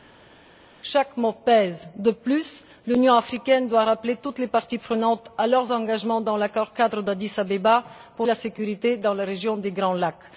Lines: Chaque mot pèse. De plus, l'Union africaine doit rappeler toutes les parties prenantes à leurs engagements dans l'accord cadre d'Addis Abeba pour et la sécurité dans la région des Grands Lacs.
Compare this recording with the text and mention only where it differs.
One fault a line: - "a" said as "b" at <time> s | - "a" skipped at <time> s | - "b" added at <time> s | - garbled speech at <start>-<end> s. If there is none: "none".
none